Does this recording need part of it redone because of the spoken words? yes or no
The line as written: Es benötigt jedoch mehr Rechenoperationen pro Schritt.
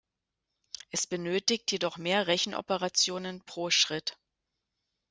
no